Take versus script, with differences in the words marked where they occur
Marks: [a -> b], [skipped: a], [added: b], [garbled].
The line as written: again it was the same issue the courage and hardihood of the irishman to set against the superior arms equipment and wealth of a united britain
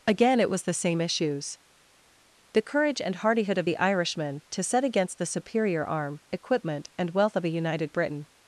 again it was the same [issue -> issues] the courage and hardihood of the irishman to set against the superior [arms -> arm] equipment and wealth of a united britain